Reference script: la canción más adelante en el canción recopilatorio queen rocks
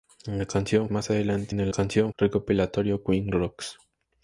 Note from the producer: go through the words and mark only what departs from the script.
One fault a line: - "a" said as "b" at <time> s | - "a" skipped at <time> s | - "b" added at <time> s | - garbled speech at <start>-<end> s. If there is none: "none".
none